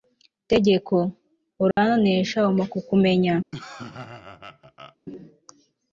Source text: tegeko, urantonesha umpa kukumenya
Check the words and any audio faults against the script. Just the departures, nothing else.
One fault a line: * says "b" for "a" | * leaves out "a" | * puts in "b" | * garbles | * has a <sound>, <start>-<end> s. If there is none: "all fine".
* has a dropout, 1.7-1.8 s
* has a laugh, 3.5-5.0 s